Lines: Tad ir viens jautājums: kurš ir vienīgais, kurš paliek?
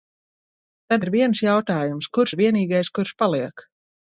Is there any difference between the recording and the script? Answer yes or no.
no